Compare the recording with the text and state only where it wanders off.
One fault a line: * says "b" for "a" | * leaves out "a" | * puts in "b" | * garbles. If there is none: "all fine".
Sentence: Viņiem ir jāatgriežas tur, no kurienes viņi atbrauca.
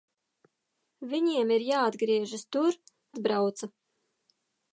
* leaves out "no kurienes viņi"